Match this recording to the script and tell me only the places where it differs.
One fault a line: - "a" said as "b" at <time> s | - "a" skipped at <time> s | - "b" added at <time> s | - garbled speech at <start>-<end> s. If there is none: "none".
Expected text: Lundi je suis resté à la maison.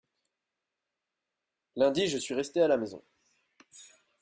none